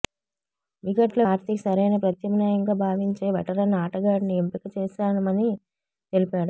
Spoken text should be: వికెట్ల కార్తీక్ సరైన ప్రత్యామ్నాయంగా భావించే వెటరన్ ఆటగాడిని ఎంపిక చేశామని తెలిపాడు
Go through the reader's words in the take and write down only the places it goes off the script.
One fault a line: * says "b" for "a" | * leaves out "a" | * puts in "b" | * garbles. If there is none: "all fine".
all fine